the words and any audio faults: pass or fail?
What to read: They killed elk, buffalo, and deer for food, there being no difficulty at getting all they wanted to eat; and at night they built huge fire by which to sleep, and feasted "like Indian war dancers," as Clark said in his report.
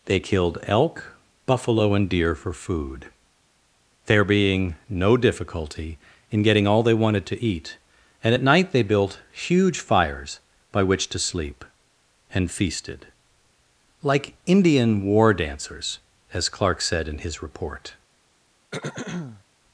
fail